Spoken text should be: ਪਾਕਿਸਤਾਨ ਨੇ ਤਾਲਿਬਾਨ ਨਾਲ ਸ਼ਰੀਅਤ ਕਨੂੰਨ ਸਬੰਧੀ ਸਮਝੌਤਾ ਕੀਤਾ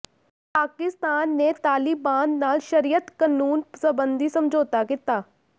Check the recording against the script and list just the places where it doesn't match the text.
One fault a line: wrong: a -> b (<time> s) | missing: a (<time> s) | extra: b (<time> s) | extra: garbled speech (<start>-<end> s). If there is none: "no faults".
no faults